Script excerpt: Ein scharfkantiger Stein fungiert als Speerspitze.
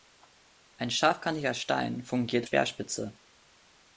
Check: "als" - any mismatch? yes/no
yes